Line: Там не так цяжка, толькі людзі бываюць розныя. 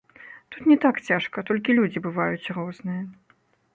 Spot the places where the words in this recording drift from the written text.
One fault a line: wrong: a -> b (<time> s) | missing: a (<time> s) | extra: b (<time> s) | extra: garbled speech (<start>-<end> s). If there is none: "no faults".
wrong: Там -> Тут (0.5 s)